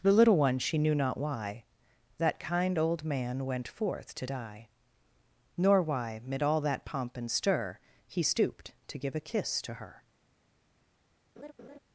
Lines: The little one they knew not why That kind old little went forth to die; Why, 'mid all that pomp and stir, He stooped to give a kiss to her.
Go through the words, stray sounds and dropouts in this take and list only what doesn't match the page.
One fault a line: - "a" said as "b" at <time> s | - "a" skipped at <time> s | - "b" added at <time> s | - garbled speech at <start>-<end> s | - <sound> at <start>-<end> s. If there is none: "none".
- "they" said as "she" at 0.6 s
- "little" said as "man" at 3.0 s
- "Nor" added at 5.6 s
- laugh at 11.4-11.8 s